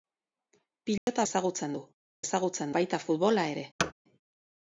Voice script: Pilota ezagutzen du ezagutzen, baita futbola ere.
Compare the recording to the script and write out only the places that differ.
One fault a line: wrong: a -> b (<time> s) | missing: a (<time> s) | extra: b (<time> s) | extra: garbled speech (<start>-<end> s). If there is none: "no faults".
no faults